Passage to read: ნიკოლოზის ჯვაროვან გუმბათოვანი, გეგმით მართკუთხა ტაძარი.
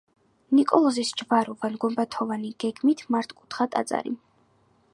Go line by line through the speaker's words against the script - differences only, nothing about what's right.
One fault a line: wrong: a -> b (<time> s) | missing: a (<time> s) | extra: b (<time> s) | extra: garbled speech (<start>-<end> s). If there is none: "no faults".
no faults